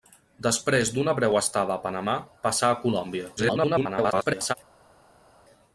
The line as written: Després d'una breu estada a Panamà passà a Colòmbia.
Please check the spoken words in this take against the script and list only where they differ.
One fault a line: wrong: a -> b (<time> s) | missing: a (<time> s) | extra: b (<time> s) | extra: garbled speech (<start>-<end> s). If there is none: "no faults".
extra: garbled speech (3.4-4.5 s)